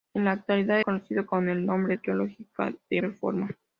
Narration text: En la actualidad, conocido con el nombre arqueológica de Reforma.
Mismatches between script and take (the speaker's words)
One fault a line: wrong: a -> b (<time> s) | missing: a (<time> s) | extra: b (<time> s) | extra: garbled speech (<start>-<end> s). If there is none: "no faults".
no faults